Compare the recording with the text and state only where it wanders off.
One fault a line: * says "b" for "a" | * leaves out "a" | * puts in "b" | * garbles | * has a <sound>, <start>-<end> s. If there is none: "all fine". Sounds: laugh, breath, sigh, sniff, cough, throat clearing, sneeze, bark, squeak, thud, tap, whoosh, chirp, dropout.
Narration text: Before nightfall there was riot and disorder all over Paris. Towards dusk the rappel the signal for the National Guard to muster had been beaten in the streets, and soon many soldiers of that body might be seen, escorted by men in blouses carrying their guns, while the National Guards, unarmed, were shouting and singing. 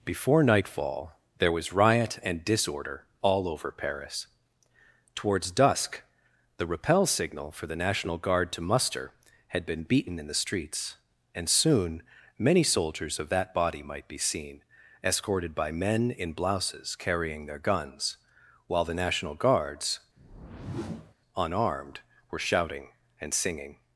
* leaves out "the"
* has a whoosh, 20.2-21.1 s